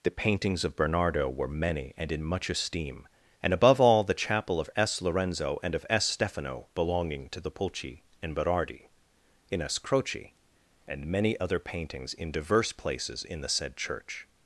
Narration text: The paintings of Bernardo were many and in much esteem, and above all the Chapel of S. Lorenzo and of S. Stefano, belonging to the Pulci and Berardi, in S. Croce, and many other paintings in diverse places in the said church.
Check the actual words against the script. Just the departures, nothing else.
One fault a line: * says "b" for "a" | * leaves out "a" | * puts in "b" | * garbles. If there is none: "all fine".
all fine